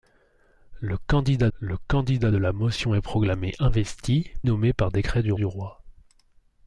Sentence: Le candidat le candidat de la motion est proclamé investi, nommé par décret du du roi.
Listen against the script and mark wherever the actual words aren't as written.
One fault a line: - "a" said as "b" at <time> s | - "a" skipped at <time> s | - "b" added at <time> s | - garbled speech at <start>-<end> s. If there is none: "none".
none